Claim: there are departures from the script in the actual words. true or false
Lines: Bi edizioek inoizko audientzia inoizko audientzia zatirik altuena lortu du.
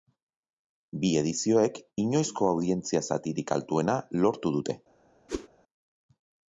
true